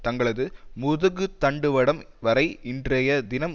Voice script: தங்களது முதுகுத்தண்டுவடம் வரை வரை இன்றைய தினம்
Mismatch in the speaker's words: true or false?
true